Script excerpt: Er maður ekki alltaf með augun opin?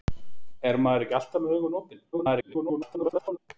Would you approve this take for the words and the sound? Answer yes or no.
no